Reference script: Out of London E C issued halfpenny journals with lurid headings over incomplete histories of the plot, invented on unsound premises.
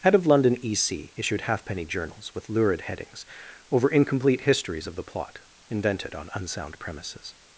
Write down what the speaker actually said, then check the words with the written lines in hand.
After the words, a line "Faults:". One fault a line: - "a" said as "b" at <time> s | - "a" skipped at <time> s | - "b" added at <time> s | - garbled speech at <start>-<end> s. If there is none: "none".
Head of London E C issued halfpenny journals with lurid headings over incomplete histories of the plot, invented on unsound premises.
Faults:
- "Out" said as "Head" at 0.0 s